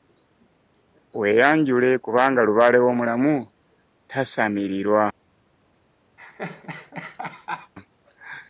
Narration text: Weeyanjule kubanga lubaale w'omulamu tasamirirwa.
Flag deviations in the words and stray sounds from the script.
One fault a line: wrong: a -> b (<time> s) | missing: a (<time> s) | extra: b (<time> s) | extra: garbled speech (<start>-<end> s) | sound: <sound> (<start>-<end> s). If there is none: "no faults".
sound: laugh (6.2-7.7 s)